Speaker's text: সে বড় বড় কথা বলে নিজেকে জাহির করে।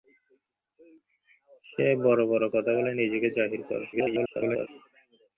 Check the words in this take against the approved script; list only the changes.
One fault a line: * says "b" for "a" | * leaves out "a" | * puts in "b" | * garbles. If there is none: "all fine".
* garbles